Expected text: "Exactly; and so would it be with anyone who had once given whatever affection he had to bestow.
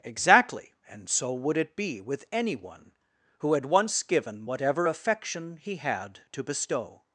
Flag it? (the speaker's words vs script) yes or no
no